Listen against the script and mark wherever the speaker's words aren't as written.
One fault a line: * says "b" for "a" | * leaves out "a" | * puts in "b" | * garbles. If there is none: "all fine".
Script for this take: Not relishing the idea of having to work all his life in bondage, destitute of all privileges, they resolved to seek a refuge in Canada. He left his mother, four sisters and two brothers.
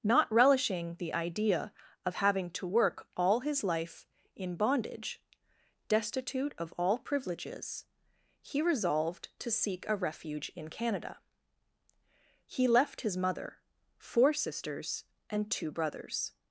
* says "he" for "they"